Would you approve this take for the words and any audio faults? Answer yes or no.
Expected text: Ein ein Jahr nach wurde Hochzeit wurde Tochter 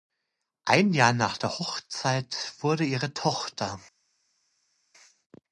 no